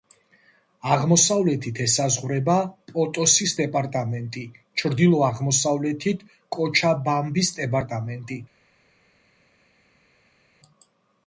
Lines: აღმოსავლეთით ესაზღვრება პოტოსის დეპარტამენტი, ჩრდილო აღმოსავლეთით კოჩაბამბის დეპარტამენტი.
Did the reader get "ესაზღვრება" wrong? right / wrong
right